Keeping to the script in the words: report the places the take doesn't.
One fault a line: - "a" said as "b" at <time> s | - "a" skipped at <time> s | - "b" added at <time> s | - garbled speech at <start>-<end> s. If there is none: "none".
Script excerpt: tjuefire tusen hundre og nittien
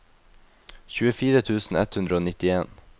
- "ett" added at 1.8 s